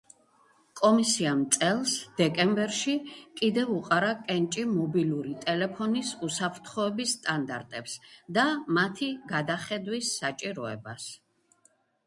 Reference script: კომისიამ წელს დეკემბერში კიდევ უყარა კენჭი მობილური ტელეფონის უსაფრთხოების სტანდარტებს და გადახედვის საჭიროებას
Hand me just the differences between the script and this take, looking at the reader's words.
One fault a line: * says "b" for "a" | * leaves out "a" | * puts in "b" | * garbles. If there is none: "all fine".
* puts in "მათი"